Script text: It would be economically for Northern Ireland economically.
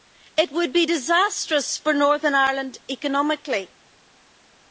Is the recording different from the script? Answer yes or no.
yes